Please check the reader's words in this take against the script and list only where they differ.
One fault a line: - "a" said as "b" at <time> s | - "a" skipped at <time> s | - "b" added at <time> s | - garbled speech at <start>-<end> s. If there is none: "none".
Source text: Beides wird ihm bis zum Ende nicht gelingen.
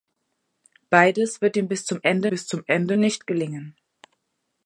- "bis zum Ende" added at 2.3 s